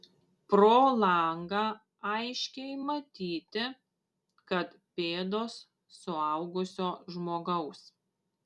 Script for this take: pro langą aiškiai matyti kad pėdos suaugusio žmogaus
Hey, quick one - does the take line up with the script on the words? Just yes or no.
yes